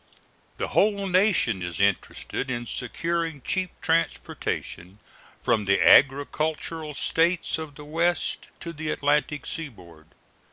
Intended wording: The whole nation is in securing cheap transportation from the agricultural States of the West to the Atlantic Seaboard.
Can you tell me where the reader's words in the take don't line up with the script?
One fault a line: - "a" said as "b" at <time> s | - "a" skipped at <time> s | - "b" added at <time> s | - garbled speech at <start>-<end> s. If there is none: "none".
- "interested" added at 1.8 s